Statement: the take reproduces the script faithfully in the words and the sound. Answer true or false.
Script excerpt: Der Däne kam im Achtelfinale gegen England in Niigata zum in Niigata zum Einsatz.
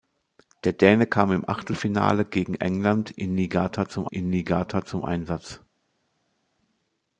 true